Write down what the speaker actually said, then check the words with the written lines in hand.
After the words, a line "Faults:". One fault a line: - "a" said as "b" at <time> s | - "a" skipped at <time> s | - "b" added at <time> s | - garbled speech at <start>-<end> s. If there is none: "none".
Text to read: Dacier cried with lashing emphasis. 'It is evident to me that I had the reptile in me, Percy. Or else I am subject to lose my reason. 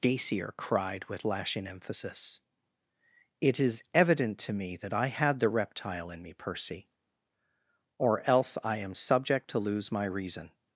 Dacier cried with lashing emphasis. 'It is evident to me that I had the reptile in me, Percy. Or else I am subject to lose my reason.
Faults:
none